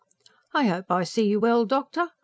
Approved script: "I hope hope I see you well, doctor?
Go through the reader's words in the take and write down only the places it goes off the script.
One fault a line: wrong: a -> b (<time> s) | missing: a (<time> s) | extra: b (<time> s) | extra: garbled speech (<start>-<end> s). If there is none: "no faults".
missing: hope (0.9 s)